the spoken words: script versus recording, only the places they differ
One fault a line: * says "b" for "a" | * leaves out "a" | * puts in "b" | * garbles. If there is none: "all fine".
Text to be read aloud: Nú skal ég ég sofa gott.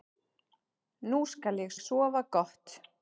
all fine